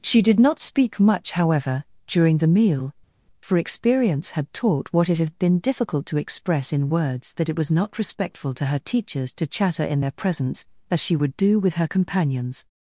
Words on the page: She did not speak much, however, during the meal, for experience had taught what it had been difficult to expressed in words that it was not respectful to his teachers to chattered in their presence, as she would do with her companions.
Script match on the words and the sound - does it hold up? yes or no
no